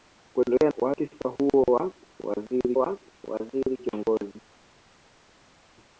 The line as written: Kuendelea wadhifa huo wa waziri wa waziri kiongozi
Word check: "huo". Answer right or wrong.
right